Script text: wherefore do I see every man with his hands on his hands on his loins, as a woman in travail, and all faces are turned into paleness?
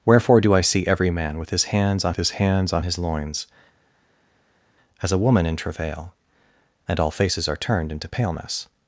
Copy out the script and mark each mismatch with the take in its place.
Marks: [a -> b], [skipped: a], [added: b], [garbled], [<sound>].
wherefore do I see every man with his hands on his hands on his loins, as a woman in travail, and all faces are turned into paleness?